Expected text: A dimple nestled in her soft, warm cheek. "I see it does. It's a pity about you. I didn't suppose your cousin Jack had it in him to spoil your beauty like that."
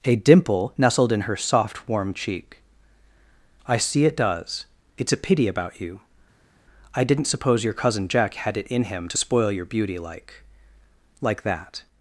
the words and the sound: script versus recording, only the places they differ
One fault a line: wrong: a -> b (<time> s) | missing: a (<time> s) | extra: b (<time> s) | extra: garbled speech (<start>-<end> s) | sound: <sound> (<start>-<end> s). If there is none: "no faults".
extra: like (11.2 s)